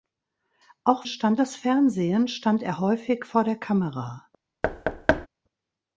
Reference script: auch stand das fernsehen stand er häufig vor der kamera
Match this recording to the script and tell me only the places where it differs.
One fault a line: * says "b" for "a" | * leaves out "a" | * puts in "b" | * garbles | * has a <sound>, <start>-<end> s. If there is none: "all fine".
* has a thud, 4.6-5.3 s